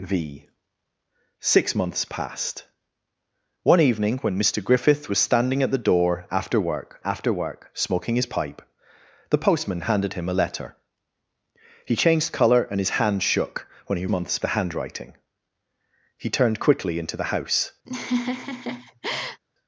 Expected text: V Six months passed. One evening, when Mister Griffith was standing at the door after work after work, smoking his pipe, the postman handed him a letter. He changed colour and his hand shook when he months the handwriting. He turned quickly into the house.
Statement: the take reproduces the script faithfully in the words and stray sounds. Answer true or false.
false